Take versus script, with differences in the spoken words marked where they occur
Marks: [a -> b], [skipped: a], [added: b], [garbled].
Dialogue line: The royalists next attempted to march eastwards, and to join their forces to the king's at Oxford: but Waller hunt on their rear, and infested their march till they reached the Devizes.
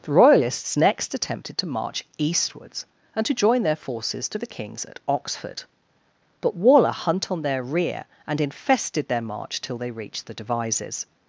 The royalists next attempted to march eastwards, and to join their forces to the king's at Oxford: but Waller hunt on their rear, and infested their march till they reached the Devizes.